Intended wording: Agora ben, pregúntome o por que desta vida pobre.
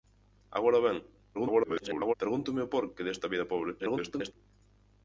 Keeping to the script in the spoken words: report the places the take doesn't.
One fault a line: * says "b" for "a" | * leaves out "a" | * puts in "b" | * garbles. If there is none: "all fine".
* garbles
* garbles